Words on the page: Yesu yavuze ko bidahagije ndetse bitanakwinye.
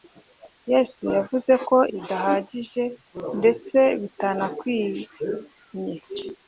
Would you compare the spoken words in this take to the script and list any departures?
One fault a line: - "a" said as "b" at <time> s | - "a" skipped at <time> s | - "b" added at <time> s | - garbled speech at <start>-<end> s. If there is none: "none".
none